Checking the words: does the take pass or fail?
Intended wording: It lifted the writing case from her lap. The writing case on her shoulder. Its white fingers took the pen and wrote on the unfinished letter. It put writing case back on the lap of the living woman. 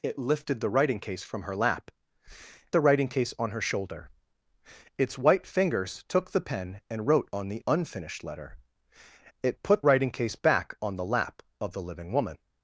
pass